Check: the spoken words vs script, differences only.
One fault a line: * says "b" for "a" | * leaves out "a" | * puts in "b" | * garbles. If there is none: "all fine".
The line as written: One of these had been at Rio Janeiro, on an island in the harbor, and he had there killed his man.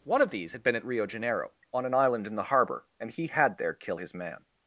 * says "kill" for "killed"